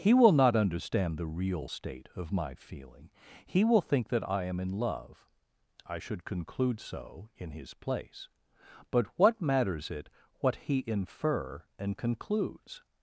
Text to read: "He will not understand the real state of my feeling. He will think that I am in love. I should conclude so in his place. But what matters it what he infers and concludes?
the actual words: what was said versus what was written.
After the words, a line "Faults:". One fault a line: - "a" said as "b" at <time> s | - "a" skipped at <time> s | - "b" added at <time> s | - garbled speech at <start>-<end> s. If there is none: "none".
"He will not understand the real state of my feeling. He will think that I am in love. I should conclude so in his place. But what matters it what he infer and concludes?
Faults:
- "infers" said as "infer" at 10.9 s